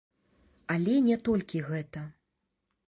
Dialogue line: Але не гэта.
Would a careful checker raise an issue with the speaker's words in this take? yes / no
yes